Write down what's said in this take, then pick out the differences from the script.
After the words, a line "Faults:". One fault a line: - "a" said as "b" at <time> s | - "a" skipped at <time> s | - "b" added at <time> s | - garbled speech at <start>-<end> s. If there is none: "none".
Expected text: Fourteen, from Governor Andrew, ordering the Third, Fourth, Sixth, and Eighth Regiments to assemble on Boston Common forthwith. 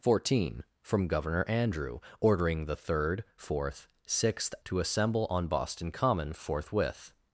Fourteen, from Governor Andrew, ordering the Third, Fourth, Sixth, to assemble on Boston Common forthwith.
Faults:
- "and Eighth Regiments" skipped at 4.5 s